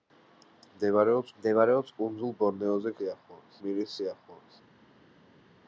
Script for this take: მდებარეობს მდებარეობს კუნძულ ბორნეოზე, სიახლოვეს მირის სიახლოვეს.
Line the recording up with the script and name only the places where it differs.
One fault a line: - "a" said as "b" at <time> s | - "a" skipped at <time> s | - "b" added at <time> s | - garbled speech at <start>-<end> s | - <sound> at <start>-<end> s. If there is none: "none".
none